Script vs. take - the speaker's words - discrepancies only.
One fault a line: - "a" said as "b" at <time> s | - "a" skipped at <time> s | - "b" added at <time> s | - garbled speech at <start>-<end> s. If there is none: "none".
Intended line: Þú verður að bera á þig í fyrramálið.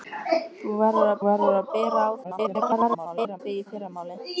- "verður að" added at 1.2 s
- garbled speech at 2.2-3.4 s